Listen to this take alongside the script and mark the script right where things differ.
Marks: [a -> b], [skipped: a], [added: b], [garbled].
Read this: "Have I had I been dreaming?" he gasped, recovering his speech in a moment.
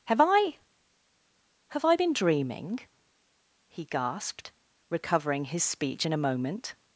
"Have I [had -> have] I been dreaming?" he gasped, recovering his speech in a moment.